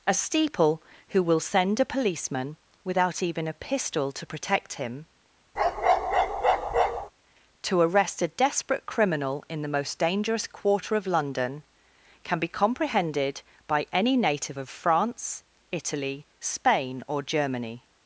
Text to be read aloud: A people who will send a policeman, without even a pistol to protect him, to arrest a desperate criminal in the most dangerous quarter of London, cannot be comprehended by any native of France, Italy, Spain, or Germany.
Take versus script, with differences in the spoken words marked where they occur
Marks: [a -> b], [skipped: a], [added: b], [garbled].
A [people -> steeple] who will send a policeman, without even a pistol to protect him, to arrest a desperate criminal in the most dangerous quarter of London, [cannot -> can] be comprehended by any native of France, Italy, Spain, or Germany.